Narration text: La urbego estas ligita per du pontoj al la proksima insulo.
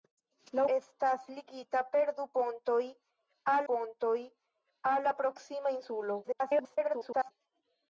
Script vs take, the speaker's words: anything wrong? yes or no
yes